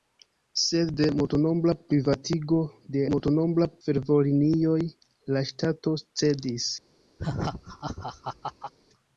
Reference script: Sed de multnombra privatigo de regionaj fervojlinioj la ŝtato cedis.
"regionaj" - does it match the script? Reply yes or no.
no